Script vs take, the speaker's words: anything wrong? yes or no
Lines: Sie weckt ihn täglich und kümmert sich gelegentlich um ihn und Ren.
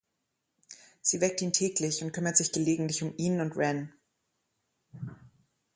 no